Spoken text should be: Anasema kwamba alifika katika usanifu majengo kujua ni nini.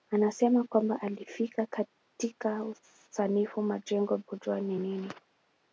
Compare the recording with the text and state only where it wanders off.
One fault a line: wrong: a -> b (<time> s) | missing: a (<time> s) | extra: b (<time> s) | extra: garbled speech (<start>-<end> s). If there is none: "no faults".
no faults